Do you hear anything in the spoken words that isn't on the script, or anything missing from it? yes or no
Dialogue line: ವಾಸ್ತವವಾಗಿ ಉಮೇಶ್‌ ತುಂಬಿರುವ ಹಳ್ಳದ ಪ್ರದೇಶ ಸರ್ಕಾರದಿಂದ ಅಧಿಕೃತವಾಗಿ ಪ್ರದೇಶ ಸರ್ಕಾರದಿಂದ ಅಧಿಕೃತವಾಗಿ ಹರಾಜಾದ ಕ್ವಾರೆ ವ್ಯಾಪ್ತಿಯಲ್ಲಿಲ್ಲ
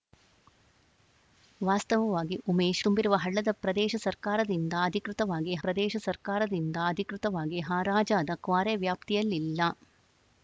no